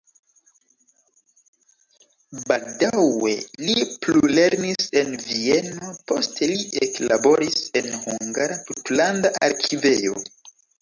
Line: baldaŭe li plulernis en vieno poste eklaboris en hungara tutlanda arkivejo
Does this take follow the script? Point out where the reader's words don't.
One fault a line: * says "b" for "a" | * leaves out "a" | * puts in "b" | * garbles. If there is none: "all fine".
* puts in "li"